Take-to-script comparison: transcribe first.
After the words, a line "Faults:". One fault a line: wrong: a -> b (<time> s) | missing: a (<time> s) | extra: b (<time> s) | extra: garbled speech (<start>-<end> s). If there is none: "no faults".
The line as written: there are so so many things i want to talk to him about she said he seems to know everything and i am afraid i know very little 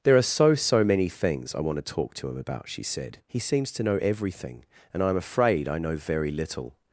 there are so so many things i want to talk to him about she said he seems to know everything and i am afraid i know very little
Faults:
no faults